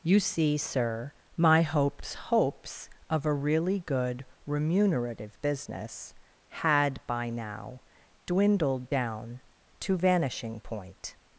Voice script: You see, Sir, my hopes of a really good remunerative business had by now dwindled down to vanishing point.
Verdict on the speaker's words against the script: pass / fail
fail